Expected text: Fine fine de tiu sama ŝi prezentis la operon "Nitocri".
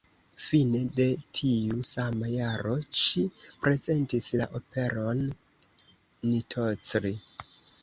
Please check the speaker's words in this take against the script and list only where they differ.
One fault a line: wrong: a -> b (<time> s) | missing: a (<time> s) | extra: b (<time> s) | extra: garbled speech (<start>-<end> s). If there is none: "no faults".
missing: fine (0.8 s)
extra: jaro (2.3 s)